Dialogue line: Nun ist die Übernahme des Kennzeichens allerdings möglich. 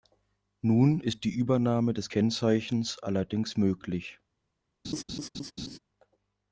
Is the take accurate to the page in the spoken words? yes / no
yes